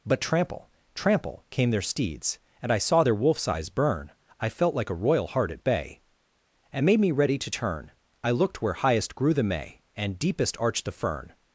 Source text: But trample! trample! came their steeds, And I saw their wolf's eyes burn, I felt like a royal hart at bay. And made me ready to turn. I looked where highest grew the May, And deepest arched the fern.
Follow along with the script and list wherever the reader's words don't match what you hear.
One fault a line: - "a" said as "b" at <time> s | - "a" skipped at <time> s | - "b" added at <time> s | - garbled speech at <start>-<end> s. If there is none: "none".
none